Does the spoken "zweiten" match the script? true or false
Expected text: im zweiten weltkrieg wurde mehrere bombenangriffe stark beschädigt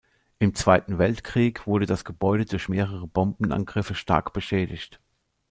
true